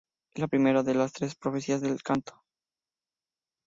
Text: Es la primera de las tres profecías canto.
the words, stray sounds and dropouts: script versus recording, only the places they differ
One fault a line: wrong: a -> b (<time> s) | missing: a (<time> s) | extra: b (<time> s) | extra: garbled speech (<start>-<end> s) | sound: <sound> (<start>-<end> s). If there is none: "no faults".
extra: del (1.8 s)